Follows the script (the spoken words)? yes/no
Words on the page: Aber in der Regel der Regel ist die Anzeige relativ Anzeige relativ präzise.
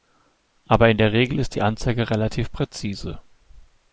no